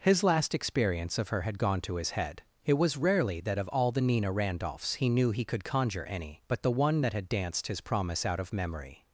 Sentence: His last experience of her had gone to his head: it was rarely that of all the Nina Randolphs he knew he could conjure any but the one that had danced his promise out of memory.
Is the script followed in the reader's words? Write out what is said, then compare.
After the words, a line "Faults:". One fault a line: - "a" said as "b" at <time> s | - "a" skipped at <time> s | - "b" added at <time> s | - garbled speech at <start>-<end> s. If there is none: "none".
His last experience of her had gone to his head: it was rarely that of all the Nina Randolphs he knew he could conjure any but the one that had danced his promise out of memory.
Faults:
none